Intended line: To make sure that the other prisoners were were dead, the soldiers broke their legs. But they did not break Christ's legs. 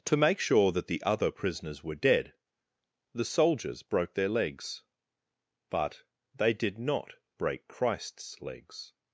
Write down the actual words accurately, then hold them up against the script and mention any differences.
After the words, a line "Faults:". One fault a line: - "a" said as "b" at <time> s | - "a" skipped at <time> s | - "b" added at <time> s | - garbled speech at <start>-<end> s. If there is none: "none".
To make sure that the other prisoners were dead, the soldiers broke their legs. But they did not break Christ's legs.
Faults:
- "were" skipped at 1.9 s